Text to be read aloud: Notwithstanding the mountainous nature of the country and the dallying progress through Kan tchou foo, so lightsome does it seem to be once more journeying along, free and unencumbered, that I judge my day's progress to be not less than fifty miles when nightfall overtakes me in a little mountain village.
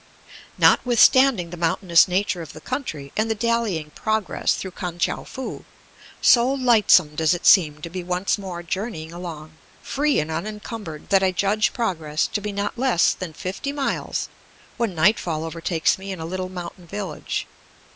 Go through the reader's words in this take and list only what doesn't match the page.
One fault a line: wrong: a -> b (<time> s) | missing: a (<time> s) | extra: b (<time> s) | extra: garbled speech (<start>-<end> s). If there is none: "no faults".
missing: my day's (11.7 s)